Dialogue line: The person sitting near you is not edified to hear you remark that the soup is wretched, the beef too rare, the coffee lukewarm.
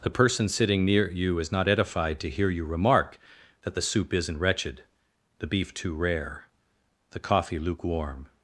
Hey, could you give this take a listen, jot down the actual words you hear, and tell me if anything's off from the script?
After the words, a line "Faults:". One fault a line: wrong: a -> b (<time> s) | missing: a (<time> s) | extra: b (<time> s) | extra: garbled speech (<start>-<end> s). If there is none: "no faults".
The person sitting near you is not edified to hear you remark that the soup isn't wretched, the beef too rare, the coffee lukewarm.
Faults:
wrong: is -> isn't (4.2 s)